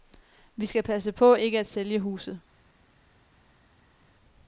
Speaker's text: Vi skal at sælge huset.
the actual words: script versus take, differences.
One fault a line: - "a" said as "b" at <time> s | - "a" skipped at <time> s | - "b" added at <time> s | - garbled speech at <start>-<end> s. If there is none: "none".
- "passe på ikke" added at 0.8 s